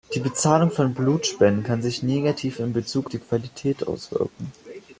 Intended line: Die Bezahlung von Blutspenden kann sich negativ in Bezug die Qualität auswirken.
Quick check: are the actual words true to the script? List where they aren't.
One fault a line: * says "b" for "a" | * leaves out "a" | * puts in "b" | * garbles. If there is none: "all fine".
all fine